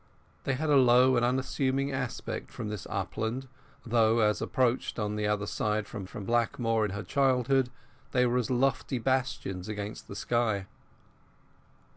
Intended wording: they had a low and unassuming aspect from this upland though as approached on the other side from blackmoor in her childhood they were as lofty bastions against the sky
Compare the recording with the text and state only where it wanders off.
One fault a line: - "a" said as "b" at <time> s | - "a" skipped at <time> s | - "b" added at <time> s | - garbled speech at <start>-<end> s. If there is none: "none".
- "from" added at 6.1 s